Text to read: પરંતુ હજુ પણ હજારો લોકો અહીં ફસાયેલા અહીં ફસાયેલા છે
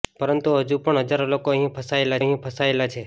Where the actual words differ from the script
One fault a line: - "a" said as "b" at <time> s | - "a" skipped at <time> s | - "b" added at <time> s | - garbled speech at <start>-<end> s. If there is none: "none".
none